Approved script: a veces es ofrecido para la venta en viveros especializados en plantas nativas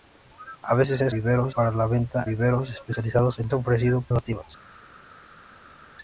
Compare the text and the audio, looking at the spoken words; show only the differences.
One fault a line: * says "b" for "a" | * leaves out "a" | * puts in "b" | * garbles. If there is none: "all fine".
* says "viveros" for "ofrecido"
* leaves out "en"
* says "ofrecido" for "plantas"